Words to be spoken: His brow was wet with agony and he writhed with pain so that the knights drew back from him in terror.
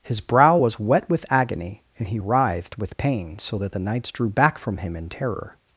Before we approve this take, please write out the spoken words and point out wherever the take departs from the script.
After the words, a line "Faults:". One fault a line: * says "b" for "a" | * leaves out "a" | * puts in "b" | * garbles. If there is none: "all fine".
His brow was wet with agony and he writhed with pain so that the knights drew back from him in terror.
Faults:
all fine